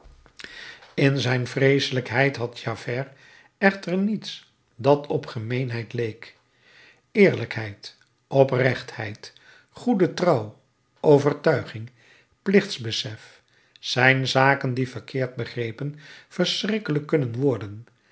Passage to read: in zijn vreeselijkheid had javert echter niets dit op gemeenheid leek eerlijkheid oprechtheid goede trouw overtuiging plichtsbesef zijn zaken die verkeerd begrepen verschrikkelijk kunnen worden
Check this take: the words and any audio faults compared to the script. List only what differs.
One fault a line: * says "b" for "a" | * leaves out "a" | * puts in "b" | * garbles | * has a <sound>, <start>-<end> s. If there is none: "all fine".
* says "dat" for "dit"